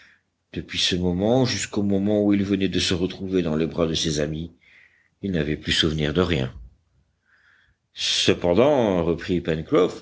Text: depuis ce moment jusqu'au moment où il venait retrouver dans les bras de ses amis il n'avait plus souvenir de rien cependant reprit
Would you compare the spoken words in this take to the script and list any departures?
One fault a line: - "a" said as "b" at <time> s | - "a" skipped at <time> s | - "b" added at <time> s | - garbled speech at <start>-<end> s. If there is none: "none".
- "de se" added at 2.7 s